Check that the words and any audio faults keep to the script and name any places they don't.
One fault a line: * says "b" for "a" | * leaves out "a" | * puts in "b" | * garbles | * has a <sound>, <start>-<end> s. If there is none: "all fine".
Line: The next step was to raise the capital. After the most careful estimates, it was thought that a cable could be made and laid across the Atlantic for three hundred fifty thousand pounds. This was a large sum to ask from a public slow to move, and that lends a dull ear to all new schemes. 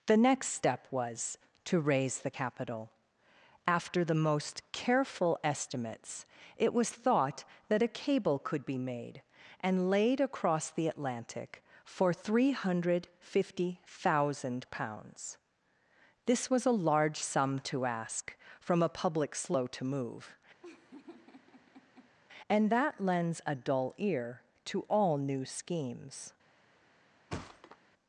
* has a laugh, 20.6-22.1 s
* has a thud, 27.3-27.8 s